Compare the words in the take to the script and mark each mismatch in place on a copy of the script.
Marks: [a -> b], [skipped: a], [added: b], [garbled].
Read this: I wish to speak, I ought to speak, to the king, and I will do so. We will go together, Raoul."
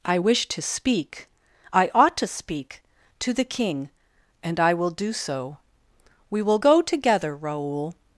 I wish to speak, I ought to speak, to the king, and I will do so. We will go together, Raoul."